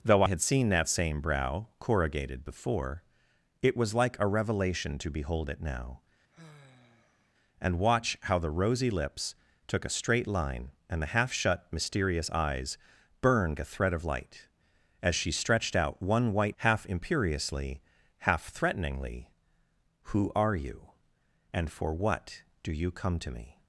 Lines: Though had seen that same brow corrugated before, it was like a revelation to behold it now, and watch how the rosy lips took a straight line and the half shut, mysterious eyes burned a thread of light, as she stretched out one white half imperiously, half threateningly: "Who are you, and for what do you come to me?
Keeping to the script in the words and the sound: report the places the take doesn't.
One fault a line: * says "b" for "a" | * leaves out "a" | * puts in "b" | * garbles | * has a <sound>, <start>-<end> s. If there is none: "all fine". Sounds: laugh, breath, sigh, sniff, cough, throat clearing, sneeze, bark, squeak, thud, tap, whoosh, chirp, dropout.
* has a sigh, 6.3-7.3 s